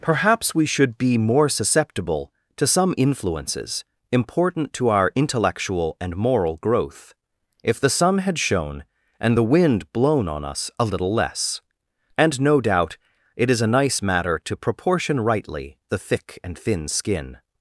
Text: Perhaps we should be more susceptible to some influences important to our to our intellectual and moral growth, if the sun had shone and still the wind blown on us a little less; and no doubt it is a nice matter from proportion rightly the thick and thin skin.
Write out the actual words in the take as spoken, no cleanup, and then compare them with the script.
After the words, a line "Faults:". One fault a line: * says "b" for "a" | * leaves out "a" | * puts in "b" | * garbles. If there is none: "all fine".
Perhaps we should be more susceptible to some influences important to our intellectual and moral growth, if the sun had shone and the wind blown on us a little less; and no doubt it is a nice matter to proportion rightly the thick and thin skin.
Faults:
* leaves out "to our"
* leaves out "still"
* says "to" for "from"